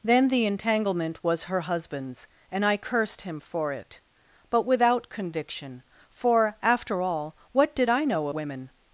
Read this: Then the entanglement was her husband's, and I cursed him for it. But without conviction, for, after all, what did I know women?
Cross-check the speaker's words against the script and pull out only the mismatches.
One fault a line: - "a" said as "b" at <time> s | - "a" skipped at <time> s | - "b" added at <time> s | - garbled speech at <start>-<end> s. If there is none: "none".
none